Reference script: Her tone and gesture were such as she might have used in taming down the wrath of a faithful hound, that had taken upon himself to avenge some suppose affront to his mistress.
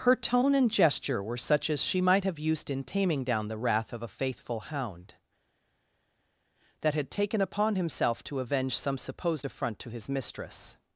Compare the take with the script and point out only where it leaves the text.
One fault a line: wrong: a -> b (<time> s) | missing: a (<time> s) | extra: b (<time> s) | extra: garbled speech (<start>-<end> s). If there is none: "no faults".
wrong: suppose -> supposed (9.0 s)